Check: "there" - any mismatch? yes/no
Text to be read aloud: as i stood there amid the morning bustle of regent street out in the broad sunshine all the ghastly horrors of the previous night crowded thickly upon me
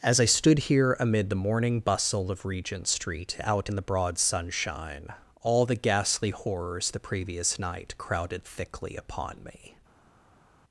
yes